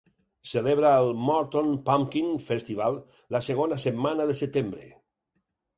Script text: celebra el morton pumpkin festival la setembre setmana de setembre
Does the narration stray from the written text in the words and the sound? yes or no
yes